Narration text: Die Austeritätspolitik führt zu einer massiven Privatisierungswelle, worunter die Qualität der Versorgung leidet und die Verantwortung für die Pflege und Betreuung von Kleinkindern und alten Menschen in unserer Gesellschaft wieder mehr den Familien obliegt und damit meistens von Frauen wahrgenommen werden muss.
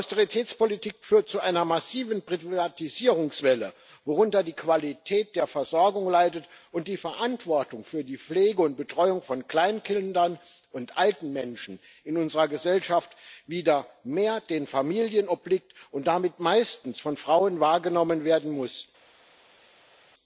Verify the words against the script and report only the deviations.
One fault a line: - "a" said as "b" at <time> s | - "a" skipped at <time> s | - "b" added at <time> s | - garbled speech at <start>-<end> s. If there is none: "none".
none